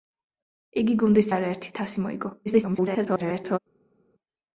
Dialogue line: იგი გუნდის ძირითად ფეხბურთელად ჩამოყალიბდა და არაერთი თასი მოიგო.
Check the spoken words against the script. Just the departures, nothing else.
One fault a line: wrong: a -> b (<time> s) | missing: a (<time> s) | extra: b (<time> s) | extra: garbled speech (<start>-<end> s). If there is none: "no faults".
missing: ძირითად ფეხბურთელად ჩამოყალიბდა (1.3 s)
extra: garbled speech (2.5-3.6 s)